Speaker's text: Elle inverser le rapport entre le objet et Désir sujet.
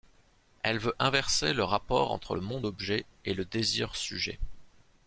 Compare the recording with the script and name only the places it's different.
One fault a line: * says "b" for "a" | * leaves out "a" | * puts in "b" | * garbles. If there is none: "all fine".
* puts in "veut"
* puts in "monde"
* puts in "le"